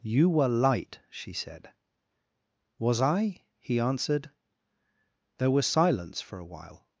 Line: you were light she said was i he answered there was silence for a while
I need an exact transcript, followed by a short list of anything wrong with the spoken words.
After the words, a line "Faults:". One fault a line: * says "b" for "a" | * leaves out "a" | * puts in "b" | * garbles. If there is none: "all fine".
you were light she said was i he answered there was silence for a while
Faults:
all fine